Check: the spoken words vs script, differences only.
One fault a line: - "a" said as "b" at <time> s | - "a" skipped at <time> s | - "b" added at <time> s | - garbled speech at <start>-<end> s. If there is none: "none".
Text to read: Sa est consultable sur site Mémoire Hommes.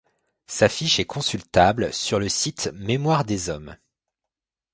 - "fiche" added at 0.7 s
- "le" added at 2.2 s
- "des" added at 3.2 s